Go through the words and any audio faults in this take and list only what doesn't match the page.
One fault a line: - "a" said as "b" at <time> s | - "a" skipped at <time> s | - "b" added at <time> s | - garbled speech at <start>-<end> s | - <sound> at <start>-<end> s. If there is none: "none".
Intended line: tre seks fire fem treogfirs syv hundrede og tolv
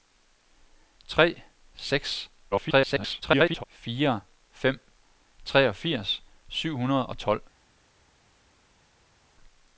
- garbled speech at 2.5-3.6 s